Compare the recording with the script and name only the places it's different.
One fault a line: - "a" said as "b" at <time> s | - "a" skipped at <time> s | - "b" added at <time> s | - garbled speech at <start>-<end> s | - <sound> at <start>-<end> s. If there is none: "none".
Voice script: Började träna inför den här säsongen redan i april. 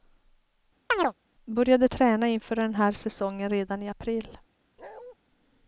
- chirp at 0.9-1.1 s
- bark at 4.8-5.1 s